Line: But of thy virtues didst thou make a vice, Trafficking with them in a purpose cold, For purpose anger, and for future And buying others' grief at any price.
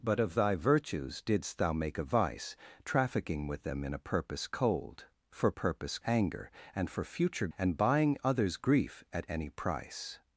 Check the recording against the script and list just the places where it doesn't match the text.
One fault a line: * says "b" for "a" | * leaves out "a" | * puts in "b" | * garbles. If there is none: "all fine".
all fine